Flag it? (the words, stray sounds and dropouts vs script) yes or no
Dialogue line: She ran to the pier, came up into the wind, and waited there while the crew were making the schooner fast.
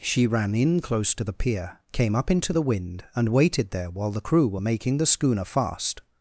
yes